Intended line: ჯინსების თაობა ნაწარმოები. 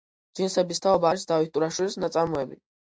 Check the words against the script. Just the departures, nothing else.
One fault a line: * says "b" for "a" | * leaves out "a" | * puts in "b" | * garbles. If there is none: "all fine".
* puts in "არის დავით ტურაშვილის"